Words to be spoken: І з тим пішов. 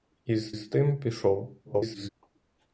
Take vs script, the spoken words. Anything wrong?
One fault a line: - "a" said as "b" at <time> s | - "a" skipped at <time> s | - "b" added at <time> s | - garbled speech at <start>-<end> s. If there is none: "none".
- "з" added at 0.5 s
- garbled speech at 1.6-2.1 s